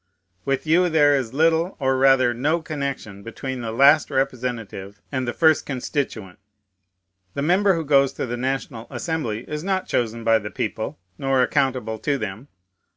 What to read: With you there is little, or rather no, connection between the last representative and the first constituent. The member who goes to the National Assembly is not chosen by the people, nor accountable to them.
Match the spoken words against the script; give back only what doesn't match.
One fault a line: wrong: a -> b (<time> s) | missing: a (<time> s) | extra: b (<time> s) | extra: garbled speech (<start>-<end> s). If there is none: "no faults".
no faults